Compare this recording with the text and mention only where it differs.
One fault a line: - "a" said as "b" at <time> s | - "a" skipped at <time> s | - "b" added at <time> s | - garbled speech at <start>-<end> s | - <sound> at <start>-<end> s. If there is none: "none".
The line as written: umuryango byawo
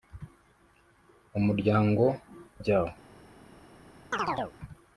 - chirp at 4.1-4.6 s